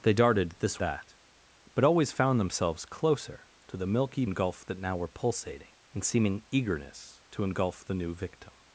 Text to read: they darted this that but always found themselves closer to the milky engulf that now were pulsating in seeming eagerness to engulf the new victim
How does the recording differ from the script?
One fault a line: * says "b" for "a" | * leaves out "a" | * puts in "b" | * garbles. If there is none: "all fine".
all fine